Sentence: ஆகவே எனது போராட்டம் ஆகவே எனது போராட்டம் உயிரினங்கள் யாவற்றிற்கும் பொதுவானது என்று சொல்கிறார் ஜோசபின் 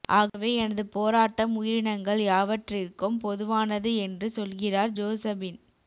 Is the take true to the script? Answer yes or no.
no